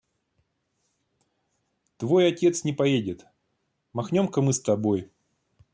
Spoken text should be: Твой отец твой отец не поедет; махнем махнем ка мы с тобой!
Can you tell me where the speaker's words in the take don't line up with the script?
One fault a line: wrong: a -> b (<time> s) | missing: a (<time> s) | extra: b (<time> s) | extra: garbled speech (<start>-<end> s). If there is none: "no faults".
missing: твой отец (2.6 s)
missing: махнем (4.3 s)